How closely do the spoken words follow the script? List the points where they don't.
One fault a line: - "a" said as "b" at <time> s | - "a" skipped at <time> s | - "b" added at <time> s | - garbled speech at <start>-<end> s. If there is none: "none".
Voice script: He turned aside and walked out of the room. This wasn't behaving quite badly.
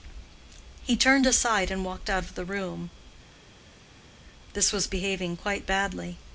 - "wasn't" said as "was" at 4.7 s